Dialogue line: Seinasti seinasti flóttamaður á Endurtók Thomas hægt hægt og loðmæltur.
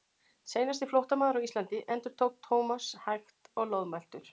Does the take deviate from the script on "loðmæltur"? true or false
false